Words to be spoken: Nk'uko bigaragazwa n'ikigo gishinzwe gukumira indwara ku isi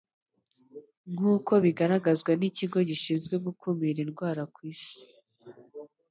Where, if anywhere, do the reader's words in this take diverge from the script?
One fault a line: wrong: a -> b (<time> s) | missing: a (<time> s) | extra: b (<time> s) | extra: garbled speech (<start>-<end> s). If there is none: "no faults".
no faults